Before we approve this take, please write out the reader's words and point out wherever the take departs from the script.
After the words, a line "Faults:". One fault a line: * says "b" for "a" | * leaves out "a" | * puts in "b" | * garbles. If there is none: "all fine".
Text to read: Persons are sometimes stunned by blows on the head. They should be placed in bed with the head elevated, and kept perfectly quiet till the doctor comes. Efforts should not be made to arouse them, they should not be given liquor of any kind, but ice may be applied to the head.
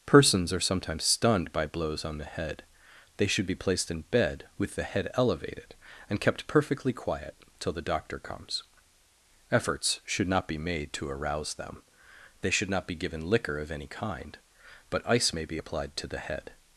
Persons are sometimes stunned by blows on the head. They should be placed in bed with the head elevated, and kept perfectly quiet till the doctor comes. Efforts should not be made to arouse them, they should not be given liquor of any kind, but ice may be applied to the head.
Faults:
all fine